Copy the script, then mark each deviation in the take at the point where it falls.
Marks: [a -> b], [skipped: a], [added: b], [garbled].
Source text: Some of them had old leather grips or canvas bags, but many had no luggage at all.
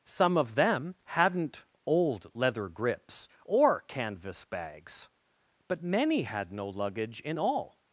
Some of them [had -> hadn't] old leather grips or canvas bags, but many had no luggage [at -> in] all.